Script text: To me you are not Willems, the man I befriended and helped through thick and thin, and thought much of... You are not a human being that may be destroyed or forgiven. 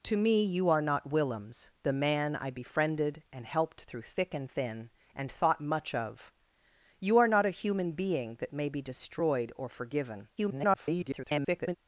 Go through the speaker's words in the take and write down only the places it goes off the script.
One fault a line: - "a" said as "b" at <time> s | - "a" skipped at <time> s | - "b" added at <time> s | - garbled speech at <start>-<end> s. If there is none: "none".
- garbled speech at 10.4-11.8 s